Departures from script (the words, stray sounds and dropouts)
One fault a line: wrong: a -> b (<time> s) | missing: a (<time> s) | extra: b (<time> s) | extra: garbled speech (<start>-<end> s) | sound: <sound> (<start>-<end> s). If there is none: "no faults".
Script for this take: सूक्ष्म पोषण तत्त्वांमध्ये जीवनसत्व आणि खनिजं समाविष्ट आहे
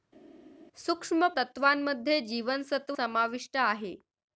missing: पोषण (1.3 s)
missing: आणि खनिजं (3.0 s)